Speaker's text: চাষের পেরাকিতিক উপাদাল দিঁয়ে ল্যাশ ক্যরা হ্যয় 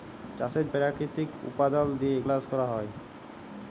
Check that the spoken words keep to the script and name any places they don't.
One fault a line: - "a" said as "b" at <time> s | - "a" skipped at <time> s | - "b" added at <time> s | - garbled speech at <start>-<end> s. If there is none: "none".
none